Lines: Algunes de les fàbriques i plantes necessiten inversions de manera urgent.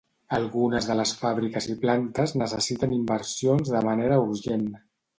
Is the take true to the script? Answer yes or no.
yes